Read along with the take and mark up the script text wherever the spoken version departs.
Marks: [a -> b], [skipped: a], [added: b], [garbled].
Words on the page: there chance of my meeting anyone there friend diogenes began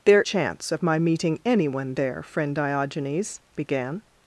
there chance of my meeting anyone there friend diogenes began